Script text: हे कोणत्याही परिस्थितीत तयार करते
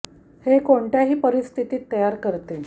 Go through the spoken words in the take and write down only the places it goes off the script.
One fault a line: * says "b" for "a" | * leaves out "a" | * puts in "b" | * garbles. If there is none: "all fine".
all fine